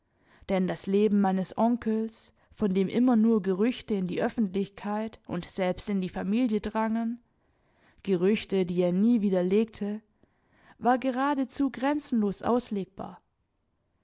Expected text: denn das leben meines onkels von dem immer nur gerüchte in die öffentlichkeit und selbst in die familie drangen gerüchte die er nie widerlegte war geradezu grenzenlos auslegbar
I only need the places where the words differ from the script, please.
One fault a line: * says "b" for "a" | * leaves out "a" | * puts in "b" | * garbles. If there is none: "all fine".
all fine